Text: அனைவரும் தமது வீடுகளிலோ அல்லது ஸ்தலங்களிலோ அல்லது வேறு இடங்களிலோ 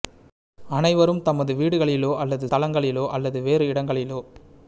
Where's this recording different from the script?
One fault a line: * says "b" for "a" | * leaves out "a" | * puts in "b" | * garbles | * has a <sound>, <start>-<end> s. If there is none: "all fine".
all fine